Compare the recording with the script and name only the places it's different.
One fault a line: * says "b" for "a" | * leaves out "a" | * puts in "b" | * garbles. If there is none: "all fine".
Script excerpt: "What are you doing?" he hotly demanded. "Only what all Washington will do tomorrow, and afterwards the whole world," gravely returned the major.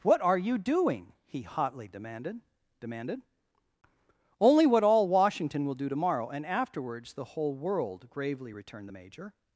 * puts in "demanded"